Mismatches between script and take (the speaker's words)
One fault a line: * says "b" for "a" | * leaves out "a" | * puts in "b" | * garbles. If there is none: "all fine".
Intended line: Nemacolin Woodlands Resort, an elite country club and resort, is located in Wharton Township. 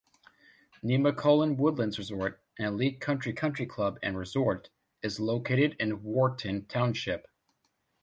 * puts in "country"